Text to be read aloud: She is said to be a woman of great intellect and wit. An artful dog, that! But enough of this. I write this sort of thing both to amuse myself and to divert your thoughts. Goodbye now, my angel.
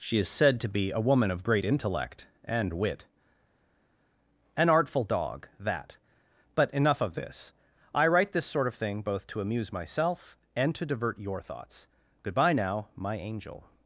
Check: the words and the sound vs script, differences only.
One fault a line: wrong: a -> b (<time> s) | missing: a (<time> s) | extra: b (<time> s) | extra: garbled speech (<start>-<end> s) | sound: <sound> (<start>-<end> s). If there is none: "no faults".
no faults